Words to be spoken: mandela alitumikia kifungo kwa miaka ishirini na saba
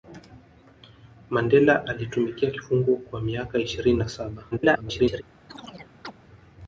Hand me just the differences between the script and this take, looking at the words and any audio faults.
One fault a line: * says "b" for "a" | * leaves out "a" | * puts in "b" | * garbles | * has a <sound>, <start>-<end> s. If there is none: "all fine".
* garbles
* has a chirp, 5.5-6.1 s